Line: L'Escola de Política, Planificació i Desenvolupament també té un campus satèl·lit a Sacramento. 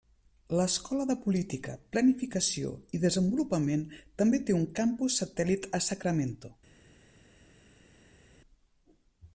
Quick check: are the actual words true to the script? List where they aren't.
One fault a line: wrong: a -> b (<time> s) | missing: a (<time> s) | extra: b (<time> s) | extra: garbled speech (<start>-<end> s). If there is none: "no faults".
no faults